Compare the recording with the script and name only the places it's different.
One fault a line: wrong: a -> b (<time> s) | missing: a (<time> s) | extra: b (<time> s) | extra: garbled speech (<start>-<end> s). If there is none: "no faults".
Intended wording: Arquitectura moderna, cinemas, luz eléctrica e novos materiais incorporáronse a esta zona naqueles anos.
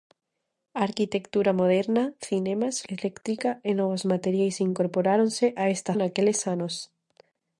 missing: luz (2.8 s)
missing: zona (5.9 s)